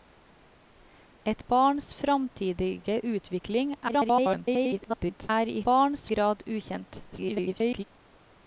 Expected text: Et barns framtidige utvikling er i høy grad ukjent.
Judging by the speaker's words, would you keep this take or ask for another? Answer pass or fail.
fail